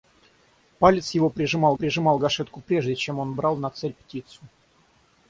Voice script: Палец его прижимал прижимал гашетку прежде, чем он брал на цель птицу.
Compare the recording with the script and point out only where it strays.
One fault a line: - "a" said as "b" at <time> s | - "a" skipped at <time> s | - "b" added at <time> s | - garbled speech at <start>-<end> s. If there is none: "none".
none